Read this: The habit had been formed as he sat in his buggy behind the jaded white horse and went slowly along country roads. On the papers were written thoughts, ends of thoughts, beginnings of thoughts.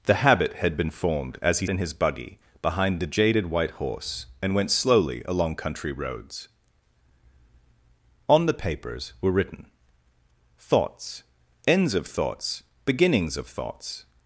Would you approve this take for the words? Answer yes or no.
no